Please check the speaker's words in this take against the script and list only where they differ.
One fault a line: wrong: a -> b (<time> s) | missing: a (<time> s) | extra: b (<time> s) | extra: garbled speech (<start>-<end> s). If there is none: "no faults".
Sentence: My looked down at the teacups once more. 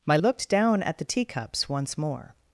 no faults